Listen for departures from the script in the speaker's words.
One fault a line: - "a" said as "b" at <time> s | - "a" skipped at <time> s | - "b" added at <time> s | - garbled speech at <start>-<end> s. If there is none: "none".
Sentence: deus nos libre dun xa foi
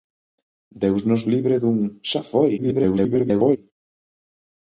- garbled speech at 2.6-3.6 s